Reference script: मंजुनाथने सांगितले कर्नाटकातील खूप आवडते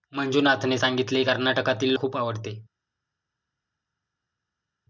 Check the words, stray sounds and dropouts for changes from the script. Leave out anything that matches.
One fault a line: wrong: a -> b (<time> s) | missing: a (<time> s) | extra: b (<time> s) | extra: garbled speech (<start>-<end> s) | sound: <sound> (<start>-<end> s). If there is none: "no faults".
no faults